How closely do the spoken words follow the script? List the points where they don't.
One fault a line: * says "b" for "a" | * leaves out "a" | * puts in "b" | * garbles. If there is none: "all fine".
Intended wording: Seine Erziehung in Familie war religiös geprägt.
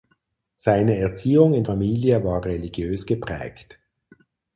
all fine